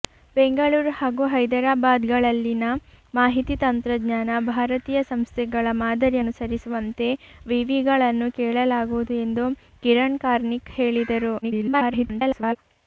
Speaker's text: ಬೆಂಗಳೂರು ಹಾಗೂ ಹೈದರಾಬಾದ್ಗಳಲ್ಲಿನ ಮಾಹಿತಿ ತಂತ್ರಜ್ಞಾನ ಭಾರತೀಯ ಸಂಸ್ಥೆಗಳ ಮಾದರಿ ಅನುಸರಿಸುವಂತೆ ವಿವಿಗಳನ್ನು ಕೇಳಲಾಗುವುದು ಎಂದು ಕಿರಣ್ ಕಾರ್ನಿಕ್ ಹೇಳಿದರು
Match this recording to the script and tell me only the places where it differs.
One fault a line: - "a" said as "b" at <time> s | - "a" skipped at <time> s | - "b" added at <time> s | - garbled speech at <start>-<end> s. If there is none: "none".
- garbled speech at 11.4-12.6 s